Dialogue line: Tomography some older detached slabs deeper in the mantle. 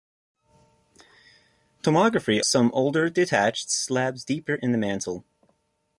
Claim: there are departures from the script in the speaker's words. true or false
false